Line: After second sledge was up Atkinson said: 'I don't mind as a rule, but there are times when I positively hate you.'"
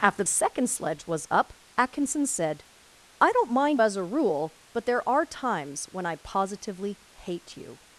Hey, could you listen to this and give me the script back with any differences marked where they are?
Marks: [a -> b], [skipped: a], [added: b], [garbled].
After second sledge was up Atkinson said: 'I don't mind as a rule, but there are times when I positively hate you.'"